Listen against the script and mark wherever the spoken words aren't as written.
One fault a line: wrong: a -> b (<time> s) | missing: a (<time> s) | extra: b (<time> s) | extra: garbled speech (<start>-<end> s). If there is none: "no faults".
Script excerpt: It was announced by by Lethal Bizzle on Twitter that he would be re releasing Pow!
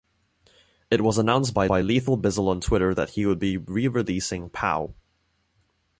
no faults